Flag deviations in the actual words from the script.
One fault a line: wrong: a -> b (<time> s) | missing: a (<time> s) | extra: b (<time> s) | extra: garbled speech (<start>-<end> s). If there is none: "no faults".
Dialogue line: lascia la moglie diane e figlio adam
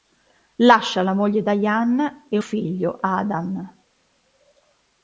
no faults